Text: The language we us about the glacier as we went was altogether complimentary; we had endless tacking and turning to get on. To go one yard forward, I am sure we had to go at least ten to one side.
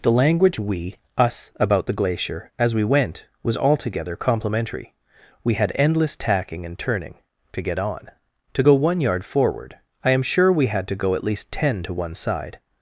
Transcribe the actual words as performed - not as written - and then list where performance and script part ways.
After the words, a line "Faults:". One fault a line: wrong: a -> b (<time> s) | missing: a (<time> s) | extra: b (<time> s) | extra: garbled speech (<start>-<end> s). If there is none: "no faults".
The language we us about the glacier as we went was altogether complimentary; we had endless tacking and turning to get on. To go one yard forward, I am sure we had to go at least ten to one side.
Faults:
no faults